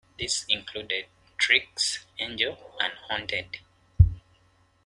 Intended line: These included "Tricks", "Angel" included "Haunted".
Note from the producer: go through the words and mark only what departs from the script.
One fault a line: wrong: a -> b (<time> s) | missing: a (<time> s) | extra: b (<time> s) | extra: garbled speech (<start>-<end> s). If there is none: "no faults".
wrong: included -> and (2.8 s)